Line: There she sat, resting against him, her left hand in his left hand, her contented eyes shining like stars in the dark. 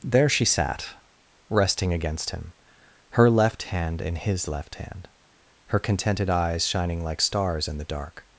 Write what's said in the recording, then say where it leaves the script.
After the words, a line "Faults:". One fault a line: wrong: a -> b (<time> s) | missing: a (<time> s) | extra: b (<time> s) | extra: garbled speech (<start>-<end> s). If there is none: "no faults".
There she sat, resting against him, her left hand in his left hand, her contented eyes shining like stars in the dark.
Faults:
no faults